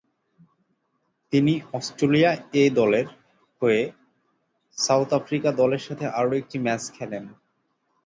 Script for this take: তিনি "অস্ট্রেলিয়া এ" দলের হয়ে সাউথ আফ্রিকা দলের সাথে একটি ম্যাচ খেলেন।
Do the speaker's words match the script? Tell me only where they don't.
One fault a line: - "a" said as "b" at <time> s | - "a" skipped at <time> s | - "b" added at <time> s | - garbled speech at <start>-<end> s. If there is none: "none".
- "আরও" added at 6.2 s